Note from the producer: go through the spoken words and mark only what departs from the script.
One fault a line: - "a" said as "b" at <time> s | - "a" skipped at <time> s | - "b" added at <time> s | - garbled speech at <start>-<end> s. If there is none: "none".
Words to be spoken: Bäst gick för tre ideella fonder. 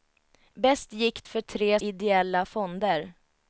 none